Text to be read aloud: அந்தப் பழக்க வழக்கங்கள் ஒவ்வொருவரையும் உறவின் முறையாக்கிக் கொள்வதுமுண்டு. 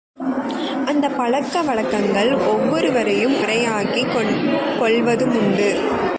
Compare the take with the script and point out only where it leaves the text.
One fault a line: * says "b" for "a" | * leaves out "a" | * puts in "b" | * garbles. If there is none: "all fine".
* leaves out "உறவின்"